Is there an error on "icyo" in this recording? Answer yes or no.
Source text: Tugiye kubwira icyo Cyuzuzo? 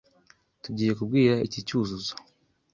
yes